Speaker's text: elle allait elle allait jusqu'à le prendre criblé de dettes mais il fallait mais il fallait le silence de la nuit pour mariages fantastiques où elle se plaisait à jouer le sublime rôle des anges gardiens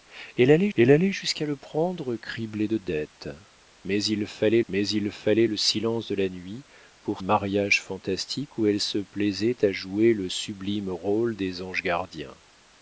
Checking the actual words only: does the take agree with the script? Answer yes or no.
yes